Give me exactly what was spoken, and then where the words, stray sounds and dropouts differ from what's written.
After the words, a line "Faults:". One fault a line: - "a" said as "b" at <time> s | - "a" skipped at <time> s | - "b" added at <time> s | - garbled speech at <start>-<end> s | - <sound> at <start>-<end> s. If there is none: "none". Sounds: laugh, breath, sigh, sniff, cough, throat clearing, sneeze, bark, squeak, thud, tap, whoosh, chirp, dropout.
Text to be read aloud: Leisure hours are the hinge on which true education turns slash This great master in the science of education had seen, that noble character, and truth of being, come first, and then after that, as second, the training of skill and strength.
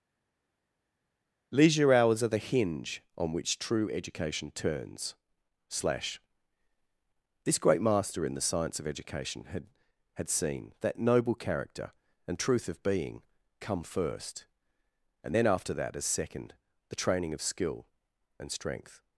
Leisure hours are the hinge on which true education turns slash This great master in the science of education had had seen, that noble character, and truth of being, come first, and then after that, as second, the training of skill and strength.
Faults:
- "had" added at 10.1 s